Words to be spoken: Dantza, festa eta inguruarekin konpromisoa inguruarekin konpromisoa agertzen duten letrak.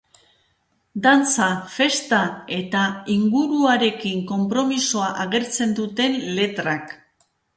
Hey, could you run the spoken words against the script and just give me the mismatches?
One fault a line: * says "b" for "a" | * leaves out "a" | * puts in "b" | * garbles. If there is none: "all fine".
* leaves out "inguruarekin konpromisoa"